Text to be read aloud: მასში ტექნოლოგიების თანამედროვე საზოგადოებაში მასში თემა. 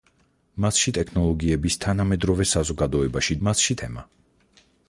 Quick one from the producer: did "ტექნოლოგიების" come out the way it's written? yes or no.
yes